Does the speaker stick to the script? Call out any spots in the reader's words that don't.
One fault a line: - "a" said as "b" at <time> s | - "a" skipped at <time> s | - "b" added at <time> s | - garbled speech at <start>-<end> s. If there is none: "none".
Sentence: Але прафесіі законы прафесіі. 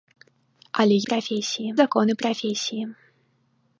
none